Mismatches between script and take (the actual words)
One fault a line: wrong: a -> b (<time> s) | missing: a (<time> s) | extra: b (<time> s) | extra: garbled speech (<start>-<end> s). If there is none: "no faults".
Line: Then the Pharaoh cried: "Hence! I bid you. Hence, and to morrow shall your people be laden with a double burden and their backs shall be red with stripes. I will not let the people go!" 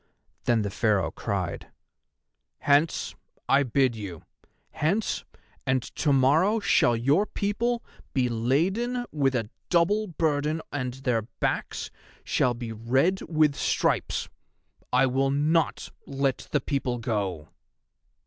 no faults